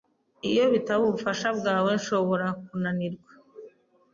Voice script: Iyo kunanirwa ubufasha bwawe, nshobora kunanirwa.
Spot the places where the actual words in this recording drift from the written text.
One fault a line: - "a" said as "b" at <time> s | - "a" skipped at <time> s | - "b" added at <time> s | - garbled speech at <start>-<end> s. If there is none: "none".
- "kunanirwa" said as "bitaba" at 0.7 s